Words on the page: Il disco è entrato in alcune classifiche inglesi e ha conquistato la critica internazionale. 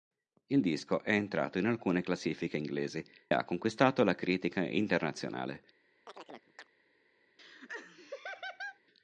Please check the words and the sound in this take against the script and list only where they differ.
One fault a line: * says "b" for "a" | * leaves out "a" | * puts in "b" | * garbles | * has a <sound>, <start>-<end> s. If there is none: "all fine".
* leaves out "e"
* has a chirp, 6.1-6.7 s
* has a laugh, 7.4-8.8 s